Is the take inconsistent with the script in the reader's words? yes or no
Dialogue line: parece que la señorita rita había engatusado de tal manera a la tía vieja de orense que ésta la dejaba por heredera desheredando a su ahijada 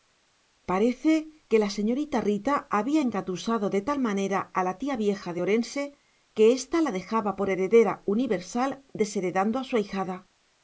yes